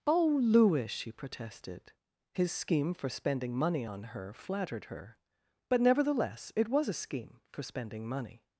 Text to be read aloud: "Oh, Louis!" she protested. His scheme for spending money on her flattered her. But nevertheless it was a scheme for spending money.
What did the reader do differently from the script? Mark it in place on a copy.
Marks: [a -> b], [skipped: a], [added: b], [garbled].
"Oh, Louis!" she protested. His scheme for spending money on her flattered her. But nevertheless it was a scheme for spending money.